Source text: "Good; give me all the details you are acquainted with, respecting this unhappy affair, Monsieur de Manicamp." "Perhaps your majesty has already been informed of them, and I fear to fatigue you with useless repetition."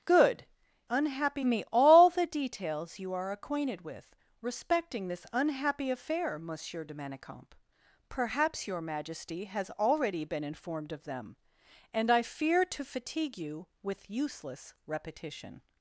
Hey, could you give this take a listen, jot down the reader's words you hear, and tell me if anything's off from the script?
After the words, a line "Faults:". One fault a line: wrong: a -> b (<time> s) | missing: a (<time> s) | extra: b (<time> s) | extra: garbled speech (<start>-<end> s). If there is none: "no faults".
"Good; unhappy me all the details you are acquainted with, respecting this unhappy affair, Monsieur de Manicamp." "Perhaps your majesty has already been informed of them, and I fear to fatigue you with useless repetition."
Faults:
wrong: give -> unhappy (0.9 s)